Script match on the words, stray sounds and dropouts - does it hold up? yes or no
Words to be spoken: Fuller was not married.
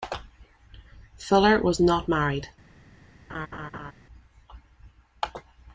no